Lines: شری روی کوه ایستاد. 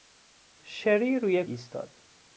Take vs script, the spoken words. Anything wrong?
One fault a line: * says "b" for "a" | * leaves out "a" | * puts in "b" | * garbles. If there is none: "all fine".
* leaves out "کوه"